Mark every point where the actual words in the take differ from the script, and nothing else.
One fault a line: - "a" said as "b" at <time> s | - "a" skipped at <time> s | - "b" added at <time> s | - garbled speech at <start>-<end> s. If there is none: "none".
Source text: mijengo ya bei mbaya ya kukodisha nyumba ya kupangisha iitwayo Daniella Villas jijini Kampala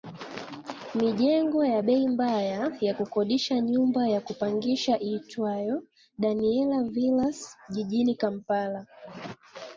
none